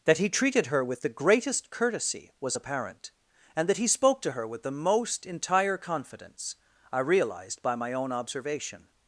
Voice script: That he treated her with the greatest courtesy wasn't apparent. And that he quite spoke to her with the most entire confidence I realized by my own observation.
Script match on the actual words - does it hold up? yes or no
no